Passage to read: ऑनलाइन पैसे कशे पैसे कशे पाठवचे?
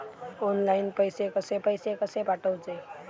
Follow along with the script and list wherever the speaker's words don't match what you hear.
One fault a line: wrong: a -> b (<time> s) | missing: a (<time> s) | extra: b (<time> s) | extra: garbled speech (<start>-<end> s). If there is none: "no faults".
no faults